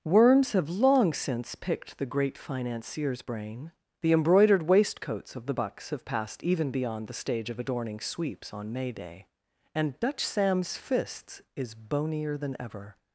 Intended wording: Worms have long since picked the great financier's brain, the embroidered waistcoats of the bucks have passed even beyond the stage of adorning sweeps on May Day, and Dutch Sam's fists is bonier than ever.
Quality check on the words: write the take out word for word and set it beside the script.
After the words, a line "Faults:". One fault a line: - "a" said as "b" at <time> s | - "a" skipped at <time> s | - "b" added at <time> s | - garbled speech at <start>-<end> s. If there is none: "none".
Worms have long since picked the great financier's brain, the embroidered waistcoats of the bucks have passed even beyond the stage of adorning sweeps on May Day, and Dutch Sam's fists is bonier than ever.
Faults:
none